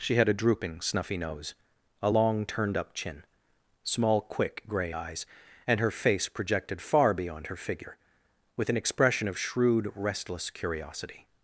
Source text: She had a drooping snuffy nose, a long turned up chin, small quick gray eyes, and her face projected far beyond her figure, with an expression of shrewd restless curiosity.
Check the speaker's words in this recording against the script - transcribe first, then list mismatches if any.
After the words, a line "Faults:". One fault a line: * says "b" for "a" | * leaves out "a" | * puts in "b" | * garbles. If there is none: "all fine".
She had a drooping snuffy nose, a long turned up chin, small quick gray eyes, and her face projected far beyond her figure, with an expression of shrewd restless curiosity.
Faults:
all fine